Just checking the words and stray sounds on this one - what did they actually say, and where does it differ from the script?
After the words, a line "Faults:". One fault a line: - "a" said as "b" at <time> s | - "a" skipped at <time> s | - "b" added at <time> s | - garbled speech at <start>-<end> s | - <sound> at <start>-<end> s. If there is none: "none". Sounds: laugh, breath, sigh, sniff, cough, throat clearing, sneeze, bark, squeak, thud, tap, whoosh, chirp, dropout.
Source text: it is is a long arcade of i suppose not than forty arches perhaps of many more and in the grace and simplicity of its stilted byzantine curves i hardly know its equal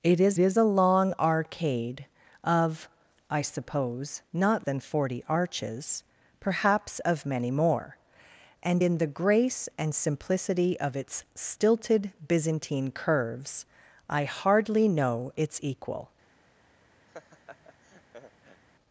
it is is a long arcade of i suppose not than forty arches perhaps of many more and in the grace and simplicity of its stilted byzantine curves i hardly know its equal
Faults:
- laugh at 17.1-18.6 s